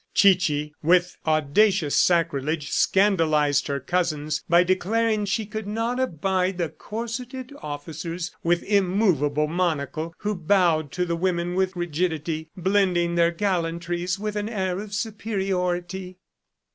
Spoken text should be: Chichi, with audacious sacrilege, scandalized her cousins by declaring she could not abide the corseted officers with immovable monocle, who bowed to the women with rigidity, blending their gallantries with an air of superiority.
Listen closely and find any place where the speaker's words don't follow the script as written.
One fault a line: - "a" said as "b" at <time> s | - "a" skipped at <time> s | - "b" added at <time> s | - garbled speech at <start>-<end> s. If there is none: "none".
none